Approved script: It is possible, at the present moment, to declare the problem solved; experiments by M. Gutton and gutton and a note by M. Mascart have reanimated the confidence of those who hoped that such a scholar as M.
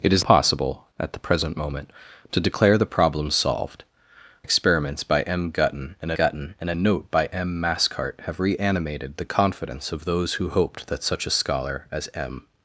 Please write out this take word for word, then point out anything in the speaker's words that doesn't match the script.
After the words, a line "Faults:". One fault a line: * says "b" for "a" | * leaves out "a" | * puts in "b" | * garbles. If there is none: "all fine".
It is possible, at the present moment, to declare the problem solved; experiments by M. Gutton and gutton and a note by M. Mascart have reanimated the confidence of those who hoped that such a scholar as M.
Faults:
all fine